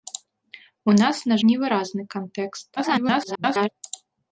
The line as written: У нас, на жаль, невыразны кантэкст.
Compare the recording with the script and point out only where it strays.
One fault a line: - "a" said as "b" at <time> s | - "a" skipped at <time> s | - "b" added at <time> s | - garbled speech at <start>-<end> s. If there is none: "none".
- "жаль" skipped at 1.4 s
- garbled speech at 2.8-3.7 s